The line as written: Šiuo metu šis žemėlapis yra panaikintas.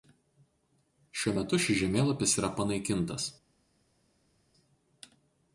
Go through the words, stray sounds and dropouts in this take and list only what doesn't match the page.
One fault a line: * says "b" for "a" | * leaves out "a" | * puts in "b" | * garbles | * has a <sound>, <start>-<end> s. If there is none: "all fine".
all fine